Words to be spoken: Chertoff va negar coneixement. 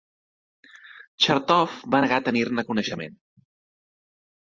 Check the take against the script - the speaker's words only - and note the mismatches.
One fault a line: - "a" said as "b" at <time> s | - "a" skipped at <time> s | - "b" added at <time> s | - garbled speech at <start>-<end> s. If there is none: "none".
- "tenir ne" added at 2.3 s